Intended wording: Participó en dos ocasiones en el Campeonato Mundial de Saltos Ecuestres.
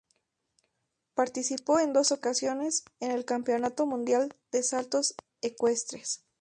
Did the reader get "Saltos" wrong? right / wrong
right